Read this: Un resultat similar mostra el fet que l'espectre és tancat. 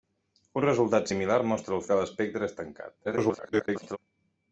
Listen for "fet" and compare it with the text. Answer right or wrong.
wrong